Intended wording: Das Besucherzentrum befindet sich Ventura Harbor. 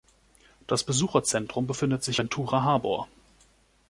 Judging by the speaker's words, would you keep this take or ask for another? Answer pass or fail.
pass